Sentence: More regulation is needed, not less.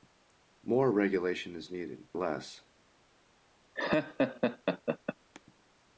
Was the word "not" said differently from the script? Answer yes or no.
yes